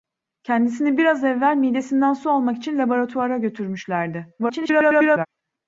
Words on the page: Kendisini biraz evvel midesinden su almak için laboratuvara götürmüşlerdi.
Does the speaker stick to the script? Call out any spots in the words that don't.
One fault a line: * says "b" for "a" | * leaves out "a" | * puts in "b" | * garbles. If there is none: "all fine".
* garbles